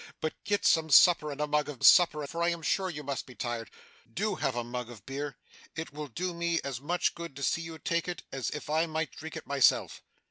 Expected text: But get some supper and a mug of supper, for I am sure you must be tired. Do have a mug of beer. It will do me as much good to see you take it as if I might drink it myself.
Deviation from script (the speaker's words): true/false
false